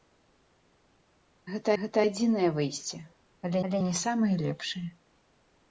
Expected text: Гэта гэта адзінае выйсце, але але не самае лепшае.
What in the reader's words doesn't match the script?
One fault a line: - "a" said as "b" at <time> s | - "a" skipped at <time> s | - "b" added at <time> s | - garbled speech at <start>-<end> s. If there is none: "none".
none